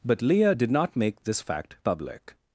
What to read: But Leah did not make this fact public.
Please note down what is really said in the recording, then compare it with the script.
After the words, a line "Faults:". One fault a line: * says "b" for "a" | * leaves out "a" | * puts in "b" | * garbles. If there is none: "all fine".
But Leah did not make this fact public.
Faults:
all fine